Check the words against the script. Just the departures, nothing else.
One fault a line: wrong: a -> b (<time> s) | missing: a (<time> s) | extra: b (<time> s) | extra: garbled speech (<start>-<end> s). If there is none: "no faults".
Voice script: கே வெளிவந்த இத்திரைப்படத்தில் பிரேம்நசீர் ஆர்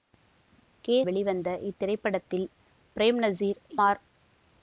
no faults